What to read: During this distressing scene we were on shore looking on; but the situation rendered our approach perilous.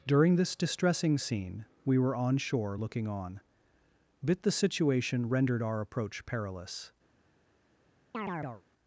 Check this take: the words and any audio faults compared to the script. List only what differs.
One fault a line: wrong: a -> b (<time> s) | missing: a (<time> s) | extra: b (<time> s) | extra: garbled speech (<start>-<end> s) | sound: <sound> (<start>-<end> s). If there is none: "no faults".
wrong: but -> bit (4.2 s)
sound: chirp (8.1-8.6 s)